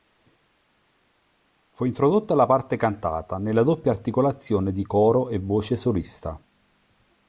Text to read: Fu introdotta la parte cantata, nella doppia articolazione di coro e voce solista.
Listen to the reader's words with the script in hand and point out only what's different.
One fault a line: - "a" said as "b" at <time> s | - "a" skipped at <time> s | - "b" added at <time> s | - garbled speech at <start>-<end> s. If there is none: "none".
none